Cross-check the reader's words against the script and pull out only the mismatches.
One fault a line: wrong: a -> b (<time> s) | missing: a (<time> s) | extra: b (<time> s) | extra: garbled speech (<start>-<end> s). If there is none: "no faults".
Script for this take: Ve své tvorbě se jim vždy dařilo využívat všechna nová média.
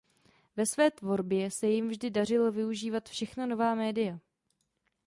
no faults